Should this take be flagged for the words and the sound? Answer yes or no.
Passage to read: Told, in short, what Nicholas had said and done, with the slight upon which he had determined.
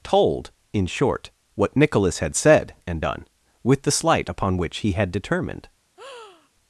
yes